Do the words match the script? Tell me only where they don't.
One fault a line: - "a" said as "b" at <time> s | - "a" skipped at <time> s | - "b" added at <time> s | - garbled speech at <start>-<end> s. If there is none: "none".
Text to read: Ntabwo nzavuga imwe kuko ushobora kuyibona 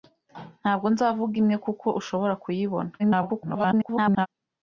- garbled speech at 3.0-4.3 s